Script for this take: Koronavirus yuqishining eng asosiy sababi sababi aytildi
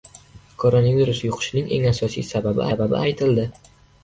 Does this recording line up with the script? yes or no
yes